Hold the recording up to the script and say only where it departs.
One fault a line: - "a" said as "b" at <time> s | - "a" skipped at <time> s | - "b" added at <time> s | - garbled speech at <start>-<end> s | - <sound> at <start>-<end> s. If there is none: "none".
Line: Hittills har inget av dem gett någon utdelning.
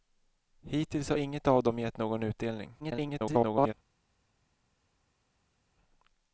- garbled speech at 2.8-3.7 s